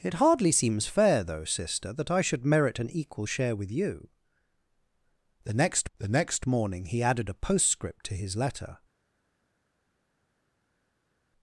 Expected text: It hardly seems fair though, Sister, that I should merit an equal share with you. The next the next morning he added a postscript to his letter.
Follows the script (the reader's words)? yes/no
yes